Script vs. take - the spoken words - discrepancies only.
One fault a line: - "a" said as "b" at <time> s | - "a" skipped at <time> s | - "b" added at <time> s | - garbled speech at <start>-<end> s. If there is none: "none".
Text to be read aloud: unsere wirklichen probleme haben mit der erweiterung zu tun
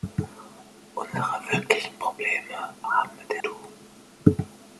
- "erweiterung zu" skipped at 3.4 s